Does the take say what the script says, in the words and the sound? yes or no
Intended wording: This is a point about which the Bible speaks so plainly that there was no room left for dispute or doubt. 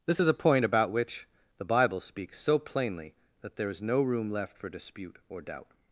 no